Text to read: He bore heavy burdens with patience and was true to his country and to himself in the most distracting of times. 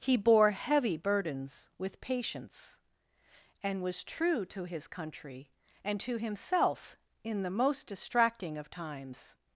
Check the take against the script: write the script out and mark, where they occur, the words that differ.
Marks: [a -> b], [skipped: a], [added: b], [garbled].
He bore heavy burdens with patience and was true to his country and to himself in the most distracting of times.